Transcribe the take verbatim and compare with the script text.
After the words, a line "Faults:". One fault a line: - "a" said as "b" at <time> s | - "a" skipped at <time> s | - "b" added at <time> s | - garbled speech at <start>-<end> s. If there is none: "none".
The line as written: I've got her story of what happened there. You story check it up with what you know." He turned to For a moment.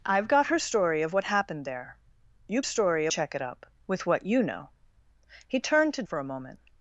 I've got her story of what happened there. You story check it up with what you know." He turned to For a moment.
Faults:
none